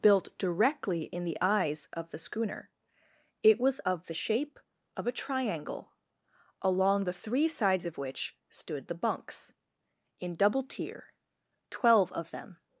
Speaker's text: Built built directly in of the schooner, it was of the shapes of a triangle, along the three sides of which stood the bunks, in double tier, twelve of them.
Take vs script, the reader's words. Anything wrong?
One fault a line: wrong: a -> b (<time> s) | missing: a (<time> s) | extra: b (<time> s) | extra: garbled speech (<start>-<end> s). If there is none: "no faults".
missing: built (0.3 s)
extra: the eyes (1.2 s)
wrong: shapes -> shape (4.1 s)